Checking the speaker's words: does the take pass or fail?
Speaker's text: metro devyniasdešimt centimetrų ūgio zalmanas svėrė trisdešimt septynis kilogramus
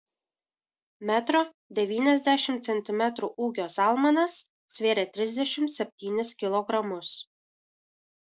pass